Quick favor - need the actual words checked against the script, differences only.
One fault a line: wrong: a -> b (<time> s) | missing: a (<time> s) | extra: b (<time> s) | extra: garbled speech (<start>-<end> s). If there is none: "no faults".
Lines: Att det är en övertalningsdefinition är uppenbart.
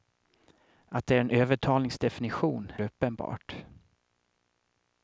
missing: är (2.7 s)